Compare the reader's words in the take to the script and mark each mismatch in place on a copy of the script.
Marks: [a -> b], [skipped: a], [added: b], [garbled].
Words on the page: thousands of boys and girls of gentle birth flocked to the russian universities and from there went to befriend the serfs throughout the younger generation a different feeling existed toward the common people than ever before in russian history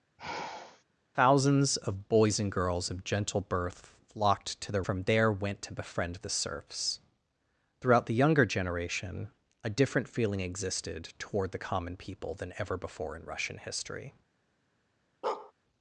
thousands of boys and girls of gentle birth flocked to the [skipped: russian universities and] from there went to befriend the serfs throughout the younger generation a different feeling existed toward the common people than ever before in russian history